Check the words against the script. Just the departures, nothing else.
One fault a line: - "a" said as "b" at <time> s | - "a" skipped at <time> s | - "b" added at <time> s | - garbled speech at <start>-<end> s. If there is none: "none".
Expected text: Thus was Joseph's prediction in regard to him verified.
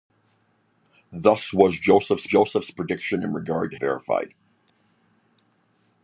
- "Joseph's" added at 2.2 s
- "him" skipped at 3.8 s